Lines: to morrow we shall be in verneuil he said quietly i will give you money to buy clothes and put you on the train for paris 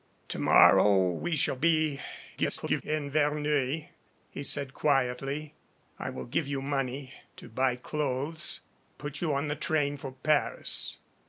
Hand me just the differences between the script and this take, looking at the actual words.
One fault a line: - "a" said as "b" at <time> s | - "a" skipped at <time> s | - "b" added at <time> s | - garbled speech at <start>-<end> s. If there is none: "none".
- garbled speech at 2.4-2.8 s
- "and" skipped at 8.6 s